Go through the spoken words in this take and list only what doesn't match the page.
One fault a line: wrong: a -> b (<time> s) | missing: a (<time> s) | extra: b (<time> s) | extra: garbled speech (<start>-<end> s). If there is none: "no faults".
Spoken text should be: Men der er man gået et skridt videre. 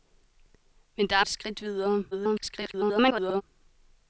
missing: man gået (1.2 s)
extra: garbled speech (2.1-3.4 s)